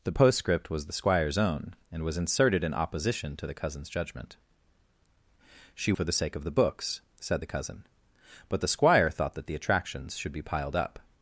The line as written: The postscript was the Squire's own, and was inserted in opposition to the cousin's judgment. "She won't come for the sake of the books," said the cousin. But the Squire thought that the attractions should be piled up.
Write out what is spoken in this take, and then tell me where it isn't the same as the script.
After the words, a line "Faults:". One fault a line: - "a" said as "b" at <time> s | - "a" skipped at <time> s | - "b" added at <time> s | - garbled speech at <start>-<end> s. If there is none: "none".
The postscript was the Squire's own, and was inserted in opposition to the cousin's judgment. "She for the sake of the books," said the cousin. But the Squire thought that the attractions should be piled up.
Faults:
- "won't come" skipped at 5.9 s